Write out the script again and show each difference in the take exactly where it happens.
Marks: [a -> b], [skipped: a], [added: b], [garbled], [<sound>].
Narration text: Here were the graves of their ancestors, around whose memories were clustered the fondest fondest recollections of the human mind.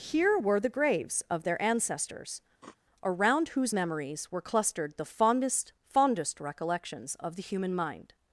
Here were the graves of their ancestors, [sniff] around whose memories were clustered the fondest fondest recollections of the human mind.